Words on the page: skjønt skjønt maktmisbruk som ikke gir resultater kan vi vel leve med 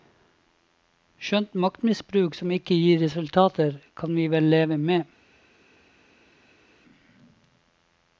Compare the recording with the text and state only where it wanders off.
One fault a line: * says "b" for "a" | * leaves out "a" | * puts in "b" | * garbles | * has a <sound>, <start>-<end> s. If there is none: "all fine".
* leaves out "skjønt"